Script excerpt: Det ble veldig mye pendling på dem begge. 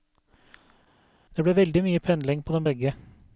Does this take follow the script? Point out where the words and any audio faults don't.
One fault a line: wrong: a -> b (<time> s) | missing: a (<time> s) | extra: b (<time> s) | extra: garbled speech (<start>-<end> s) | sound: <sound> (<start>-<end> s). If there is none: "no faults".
no faults